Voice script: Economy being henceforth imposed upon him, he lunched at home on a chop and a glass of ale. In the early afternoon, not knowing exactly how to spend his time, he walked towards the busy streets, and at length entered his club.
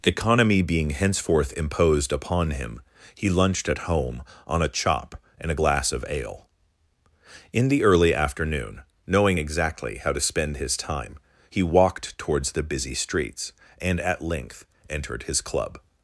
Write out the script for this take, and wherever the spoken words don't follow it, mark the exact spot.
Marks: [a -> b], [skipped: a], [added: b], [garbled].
Economy being henceforth imposed upon him, he lunched at home on a chop and a glass of ale. In the early afternoon, [skipped: not] knowing exactly how to spend his time, he walked towards the busy streets, and at length entered his club.